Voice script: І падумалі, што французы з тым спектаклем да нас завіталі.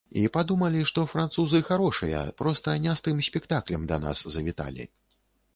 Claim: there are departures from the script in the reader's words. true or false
true